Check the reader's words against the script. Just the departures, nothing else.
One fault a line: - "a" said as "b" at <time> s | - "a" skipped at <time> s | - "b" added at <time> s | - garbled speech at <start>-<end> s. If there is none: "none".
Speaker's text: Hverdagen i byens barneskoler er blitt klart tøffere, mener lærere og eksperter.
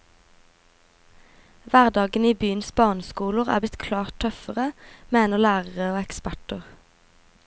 none